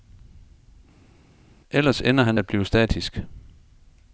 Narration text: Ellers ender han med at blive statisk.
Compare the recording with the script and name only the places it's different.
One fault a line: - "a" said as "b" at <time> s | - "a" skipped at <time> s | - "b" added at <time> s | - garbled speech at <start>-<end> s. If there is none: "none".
- "med" skipped at 2.4 s